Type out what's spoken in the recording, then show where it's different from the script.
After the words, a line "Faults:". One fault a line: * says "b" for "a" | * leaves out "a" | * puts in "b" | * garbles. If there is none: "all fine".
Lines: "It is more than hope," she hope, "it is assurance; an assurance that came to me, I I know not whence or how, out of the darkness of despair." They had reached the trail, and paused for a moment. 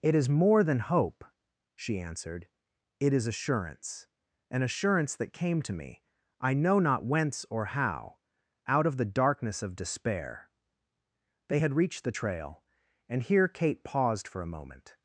"It is more than hope," she answered, "it is assurance; an assurance that came to me, I know not whence or how, out of the darkness of despair." They had reached the trail, and here Kate paused for a moment.
Faults:
* says "answered" for "hope"
* leaves out "I"
* puts in "here Kate"